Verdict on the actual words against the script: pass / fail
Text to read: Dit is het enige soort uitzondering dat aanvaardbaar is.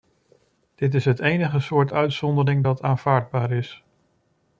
pass